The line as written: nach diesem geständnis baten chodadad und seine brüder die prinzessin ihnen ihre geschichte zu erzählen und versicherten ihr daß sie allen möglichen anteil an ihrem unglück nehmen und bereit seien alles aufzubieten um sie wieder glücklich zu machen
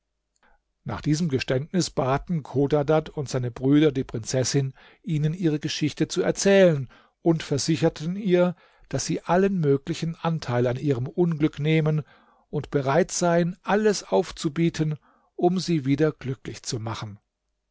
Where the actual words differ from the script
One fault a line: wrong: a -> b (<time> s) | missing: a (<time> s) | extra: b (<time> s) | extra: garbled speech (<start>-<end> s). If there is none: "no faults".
no faults